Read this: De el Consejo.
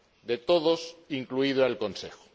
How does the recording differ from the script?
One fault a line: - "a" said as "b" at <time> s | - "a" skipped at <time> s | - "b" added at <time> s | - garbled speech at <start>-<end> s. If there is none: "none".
- "todos incluido" added at 0.4 s